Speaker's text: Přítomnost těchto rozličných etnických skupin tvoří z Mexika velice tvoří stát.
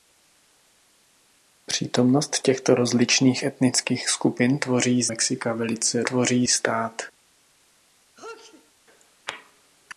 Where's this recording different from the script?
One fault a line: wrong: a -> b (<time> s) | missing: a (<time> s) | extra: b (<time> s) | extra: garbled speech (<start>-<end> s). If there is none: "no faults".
no faults